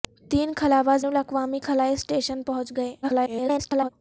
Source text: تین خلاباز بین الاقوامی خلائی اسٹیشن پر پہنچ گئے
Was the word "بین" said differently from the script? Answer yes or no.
yes